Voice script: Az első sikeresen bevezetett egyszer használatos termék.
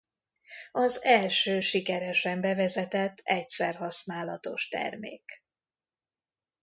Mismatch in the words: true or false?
false